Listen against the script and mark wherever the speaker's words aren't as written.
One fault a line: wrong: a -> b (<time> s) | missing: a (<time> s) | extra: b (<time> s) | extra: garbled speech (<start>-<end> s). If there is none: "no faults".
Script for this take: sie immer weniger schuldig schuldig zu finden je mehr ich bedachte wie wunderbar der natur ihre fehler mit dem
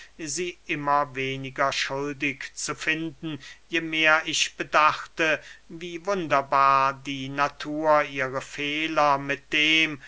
missing: schuldig (2.5 s)
wrong: der -> die (6.9 s)